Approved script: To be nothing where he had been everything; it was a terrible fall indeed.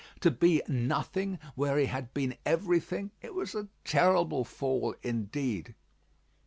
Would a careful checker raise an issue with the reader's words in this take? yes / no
no